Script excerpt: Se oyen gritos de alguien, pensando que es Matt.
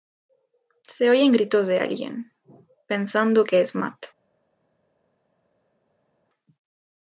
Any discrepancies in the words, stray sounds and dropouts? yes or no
no